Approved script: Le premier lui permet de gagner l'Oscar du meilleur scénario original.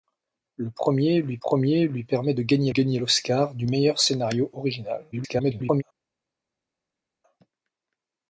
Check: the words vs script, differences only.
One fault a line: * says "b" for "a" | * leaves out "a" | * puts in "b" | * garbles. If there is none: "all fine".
* puts in "premier lui"
* puts in "gagner"
* garbles